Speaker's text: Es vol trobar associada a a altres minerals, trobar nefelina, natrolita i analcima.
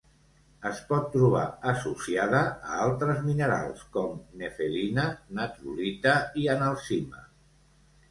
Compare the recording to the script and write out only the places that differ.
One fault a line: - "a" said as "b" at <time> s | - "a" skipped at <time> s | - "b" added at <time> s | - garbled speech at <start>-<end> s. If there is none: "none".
- "vol" said as "pot" at 0.9 s
- "a" skipped at 2.8 s
- "trobar" said as "com" at 4.0 s